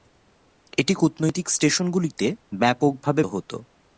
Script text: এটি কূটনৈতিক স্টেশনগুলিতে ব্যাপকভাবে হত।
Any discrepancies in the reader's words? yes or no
no